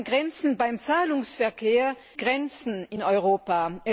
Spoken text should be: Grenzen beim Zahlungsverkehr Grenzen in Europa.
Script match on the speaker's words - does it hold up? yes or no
yes